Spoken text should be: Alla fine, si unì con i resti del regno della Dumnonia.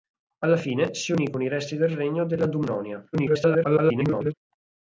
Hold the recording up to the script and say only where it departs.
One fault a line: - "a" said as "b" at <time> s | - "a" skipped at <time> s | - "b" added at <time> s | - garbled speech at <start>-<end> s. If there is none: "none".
- garbled speech at 3.1-4.3 s